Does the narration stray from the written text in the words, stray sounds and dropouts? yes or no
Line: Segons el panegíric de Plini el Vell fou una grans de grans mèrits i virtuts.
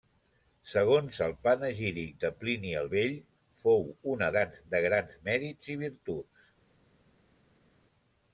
no